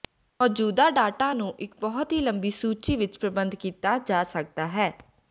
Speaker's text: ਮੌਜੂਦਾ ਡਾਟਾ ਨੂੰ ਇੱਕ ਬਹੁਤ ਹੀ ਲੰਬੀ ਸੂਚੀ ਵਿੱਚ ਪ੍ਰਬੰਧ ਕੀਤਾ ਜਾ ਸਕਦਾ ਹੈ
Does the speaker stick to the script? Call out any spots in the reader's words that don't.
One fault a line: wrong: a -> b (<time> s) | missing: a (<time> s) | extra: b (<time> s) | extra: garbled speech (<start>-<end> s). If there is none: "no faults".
no faults